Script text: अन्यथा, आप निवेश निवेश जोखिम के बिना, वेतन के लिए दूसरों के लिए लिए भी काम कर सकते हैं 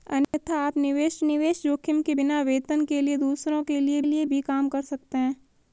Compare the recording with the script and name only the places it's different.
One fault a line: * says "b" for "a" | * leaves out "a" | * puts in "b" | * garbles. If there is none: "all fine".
all fine